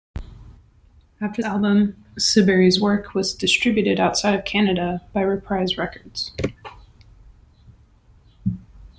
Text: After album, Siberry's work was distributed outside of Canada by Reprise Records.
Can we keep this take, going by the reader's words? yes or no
yes